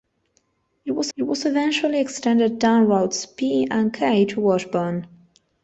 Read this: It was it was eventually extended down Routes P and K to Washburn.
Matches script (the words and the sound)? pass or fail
pass